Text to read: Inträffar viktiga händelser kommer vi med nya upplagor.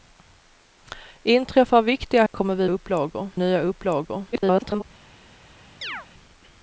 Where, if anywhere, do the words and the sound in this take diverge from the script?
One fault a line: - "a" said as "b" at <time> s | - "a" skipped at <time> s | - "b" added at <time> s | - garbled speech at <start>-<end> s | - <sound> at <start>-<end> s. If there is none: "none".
- "händelser" skipped at 2.2 s
- "med" said as "upplagor" at 2.7 s
- garbled speech at 4.3-4.8 s
- chirp at 5.8-6.1 s